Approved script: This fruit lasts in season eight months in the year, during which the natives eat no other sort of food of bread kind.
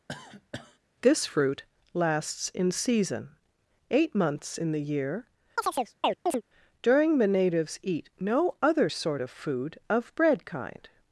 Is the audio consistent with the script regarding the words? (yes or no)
no